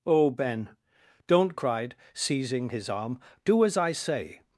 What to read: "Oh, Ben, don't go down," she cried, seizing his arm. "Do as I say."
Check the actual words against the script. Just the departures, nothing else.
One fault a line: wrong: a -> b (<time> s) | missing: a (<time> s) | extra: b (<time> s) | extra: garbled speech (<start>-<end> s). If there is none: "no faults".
missing: go down she (1.5 s)